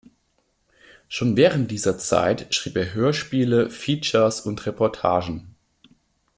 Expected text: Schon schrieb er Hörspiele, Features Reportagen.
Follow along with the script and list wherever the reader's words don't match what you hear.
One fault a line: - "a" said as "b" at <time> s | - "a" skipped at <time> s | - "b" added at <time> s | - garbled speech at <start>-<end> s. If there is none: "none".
- "während dieser Zeit" added at 1.4 s
- "und" added at 4.4 s